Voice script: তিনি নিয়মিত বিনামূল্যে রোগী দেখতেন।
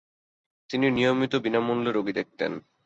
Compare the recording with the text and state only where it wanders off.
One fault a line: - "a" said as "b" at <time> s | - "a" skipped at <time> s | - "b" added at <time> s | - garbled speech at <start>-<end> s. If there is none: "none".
none